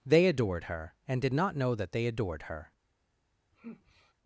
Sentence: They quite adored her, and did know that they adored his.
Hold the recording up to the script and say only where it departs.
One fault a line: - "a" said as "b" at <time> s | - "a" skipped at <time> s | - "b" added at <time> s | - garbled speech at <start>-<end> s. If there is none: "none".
- "quite" skipped at 0.2 s
- "not" added at 1.3 s
- "his" said as "her" at 2.4 s